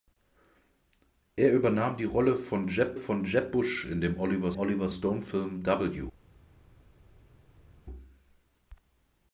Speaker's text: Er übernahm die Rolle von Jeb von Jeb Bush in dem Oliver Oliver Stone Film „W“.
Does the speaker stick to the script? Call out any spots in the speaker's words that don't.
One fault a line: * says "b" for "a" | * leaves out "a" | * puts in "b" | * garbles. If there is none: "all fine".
all fine